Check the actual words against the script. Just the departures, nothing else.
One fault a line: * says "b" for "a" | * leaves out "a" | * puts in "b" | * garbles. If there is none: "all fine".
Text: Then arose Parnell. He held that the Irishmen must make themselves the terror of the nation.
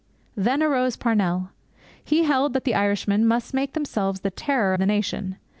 * leaves out "of"